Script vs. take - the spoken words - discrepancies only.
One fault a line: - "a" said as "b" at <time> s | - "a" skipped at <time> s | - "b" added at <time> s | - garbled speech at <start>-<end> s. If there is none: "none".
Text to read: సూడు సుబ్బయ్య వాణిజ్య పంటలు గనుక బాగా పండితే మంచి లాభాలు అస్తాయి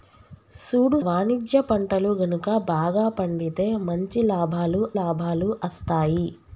- "సుబ్బయ్య" skipped at 1.0 s
- "లాభాలు" added at 5.0 s